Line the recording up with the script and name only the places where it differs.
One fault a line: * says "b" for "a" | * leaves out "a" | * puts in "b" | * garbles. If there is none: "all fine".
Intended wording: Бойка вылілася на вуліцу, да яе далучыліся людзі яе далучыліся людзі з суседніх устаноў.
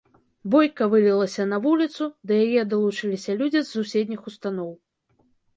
* leaves out "яе далучыліся людзі"